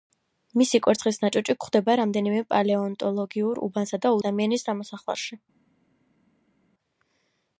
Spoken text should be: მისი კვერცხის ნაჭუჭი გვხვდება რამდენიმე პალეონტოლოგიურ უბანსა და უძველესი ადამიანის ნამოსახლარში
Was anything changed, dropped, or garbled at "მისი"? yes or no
no